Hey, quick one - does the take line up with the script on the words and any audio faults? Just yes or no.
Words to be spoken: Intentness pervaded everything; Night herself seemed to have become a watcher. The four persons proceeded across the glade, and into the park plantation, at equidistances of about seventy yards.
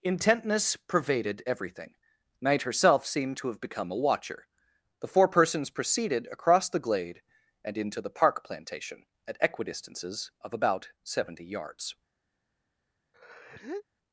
no